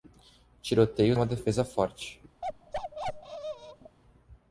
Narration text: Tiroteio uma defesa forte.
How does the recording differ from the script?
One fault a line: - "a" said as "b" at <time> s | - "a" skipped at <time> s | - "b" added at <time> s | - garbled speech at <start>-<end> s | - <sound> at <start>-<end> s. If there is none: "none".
- bark at 2.4-4.0 s